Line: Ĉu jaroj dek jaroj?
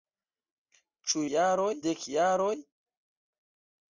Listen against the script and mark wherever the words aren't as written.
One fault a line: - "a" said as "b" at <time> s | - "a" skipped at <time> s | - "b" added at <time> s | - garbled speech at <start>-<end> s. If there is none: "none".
none